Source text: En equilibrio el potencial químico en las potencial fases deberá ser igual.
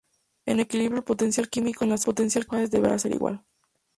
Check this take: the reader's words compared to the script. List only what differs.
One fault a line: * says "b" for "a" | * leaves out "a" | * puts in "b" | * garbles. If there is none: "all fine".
all fine